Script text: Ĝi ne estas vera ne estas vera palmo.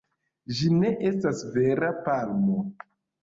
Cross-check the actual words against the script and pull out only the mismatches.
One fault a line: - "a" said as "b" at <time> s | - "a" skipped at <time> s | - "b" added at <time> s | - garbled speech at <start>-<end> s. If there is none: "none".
- "ne estas vera" skipped at 1.9 s